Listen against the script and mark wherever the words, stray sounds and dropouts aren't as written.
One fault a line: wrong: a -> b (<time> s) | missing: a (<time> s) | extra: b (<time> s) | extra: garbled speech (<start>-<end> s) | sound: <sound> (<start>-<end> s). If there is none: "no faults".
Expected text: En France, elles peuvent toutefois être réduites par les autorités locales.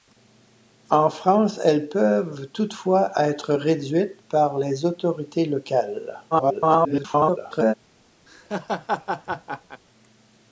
extra: garbled speech (6.3-7.7 s)
sound: laugh (8.3-9.8 s)